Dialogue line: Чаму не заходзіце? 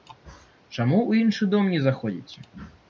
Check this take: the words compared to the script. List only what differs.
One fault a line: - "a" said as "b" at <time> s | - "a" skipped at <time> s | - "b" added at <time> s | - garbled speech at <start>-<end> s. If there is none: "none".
- "ў іншы дом" added at 1.1 s